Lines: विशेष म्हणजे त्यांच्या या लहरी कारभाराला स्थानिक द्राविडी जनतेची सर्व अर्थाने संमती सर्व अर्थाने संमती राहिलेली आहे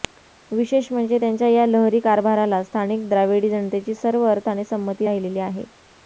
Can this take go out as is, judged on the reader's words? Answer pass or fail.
fail